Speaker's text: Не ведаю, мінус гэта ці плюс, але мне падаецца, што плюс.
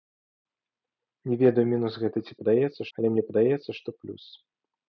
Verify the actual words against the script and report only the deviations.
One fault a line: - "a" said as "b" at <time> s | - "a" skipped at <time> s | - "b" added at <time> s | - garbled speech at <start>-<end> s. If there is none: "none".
- "плюс" said as "падаецца" at 2.4 s